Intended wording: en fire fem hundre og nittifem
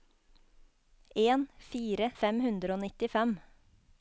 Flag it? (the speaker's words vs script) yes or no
no